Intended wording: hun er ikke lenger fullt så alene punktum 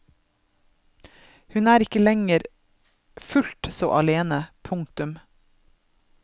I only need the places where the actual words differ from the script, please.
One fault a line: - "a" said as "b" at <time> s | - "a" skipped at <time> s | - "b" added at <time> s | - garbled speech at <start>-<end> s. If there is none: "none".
none